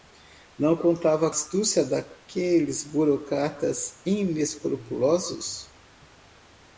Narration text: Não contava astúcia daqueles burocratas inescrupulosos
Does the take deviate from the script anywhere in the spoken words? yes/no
no